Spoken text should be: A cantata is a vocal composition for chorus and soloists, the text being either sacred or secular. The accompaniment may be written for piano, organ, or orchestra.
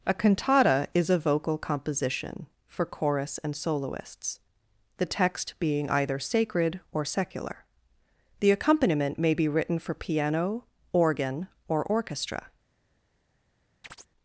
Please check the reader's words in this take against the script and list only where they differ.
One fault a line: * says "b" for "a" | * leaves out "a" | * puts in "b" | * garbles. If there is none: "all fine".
all fine